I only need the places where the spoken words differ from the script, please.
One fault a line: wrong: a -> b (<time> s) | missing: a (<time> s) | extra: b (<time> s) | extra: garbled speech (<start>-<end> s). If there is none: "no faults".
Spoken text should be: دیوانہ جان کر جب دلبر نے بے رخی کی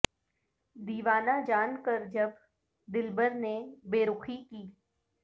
no faults